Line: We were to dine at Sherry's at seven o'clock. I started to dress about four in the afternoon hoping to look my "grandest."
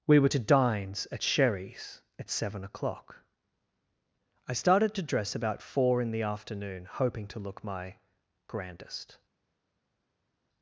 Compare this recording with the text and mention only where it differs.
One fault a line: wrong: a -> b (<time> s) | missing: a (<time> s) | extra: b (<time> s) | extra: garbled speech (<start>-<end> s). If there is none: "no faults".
wrong: dine -> dines (0.4 s)